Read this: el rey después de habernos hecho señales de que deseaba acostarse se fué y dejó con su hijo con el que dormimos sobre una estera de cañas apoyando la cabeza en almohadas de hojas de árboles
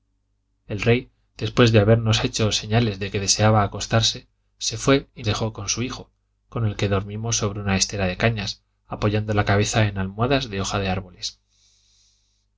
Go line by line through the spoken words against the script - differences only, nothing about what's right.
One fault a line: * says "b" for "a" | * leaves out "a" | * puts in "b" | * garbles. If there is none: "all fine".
all fine